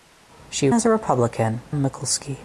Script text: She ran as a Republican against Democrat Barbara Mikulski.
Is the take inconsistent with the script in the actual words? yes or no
yes